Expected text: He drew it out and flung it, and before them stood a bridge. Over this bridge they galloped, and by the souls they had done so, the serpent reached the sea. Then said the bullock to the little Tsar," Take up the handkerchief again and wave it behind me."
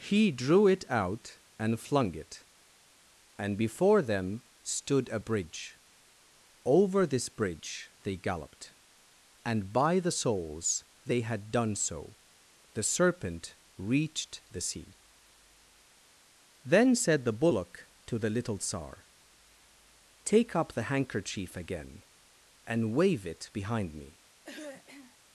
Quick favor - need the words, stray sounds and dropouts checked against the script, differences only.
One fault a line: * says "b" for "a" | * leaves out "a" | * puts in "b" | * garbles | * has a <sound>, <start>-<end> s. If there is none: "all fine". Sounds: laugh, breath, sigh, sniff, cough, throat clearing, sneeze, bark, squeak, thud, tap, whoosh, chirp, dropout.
* has a throat clearing, 24.4-25.2 s